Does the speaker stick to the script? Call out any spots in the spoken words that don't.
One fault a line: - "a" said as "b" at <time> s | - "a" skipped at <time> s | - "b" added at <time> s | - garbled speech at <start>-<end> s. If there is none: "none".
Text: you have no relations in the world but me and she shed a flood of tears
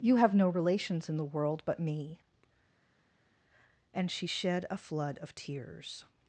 none